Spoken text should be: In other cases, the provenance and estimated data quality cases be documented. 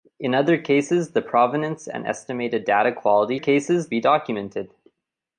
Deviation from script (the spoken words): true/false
false